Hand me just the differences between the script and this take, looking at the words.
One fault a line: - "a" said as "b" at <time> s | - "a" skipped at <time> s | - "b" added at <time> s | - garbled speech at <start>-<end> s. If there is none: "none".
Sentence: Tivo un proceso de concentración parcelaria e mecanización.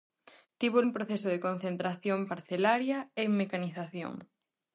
none